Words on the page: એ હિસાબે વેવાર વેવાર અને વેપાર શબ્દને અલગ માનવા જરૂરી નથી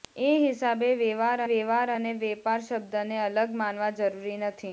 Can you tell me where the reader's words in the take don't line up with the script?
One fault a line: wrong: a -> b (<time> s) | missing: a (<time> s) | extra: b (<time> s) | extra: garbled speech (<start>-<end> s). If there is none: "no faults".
no faults